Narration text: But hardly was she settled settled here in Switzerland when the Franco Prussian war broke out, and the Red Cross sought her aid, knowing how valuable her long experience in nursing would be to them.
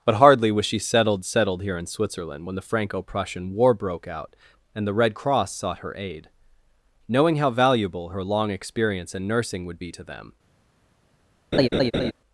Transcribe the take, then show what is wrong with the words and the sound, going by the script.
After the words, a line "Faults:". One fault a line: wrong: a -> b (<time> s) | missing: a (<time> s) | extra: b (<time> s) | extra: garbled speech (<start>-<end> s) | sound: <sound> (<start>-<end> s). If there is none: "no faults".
But hardly was she settled settled here in Switzerland when the Franco Prussian war broke out, and the Red Cross sought her aid, knowing how valuable her long experience in nursing would be to them.
Faults:
sound: laugh (11.5-12.1 s)